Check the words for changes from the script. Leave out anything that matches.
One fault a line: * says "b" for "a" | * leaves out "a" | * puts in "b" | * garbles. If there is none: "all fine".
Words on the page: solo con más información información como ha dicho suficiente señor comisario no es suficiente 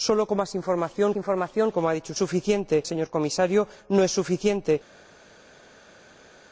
all fine